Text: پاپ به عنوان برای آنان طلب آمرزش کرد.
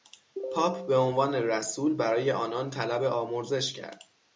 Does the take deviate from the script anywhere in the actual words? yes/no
yes